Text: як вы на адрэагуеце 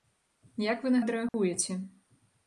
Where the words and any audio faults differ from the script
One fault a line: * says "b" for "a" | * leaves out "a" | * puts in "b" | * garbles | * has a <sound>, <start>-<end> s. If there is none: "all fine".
* has a dropout, 1.3-1.3 s